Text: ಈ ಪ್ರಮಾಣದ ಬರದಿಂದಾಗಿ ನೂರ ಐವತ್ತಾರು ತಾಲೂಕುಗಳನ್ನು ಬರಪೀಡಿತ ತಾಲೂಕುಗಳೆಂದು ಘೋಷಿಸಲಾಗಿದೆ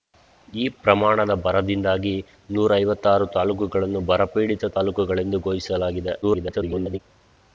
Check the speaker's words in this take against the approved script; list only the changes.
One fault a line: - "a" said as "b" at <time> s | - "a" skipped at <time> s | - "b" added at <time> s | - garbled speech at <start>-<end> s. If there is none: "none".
- garbled speech at 6.2-7.0 s